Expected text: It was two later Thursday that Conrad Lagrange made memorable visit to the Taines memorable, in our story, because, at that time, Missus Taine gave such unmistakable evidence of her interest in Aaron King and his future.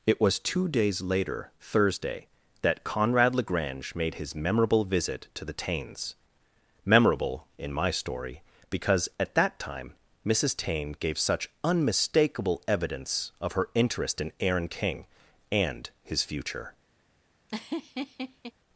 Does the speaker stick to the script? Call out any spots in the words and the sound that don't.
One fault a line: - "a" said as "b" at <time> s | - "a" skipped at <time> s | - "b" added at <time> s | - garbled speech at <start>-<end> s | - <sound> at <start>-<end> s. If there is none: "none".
- "days" added at 0.7 s
- "his" added at 4.2 s
- "our" said as "my" at 7.7 s
- laugh at 17.5-18.5 s